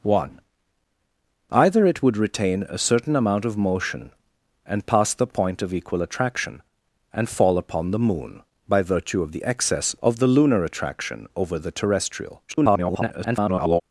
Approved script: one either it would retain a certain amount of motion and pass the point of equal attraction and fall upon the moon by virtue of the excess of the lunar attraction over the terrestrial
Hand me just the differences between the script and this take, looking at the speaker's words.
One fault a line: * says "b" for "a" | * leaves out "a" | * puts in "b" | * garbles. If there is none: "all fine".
* garbles